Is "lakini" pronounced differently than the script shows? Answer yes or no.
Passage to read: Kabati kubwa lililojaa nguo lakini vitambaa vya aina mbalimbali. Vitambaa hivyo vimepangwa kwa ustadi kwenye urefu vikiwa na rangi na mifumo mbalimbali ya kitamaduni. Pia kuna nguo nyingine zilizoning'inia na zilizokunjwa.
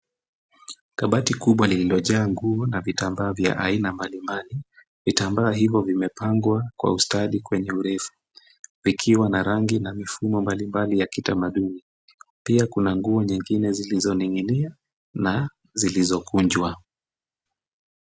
yes